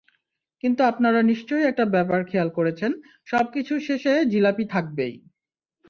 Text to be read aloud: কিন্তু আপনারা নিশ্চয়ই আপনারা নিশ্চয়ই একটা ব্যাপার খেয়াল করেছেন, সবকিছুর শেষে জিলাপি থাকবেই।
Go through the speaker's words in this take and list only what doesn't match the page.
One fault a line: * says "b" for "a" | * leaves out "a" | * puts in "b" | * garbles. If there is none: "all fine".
* leaves out "আপনারা নিশ্চয়ই"